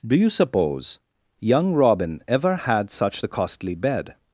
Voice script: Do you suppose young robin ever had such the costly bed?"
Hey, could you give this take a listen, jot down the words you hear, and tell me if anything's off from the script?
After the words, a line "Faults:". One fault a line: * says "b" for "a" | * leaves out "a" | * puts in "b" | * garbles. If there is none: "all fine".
Do you suppose young robin ever had such the costly bed?"
Faults:
all fine